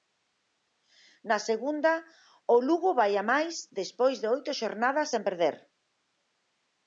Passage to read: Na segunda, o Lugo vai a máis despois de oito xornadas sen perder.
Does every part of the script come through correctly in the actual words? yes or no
yes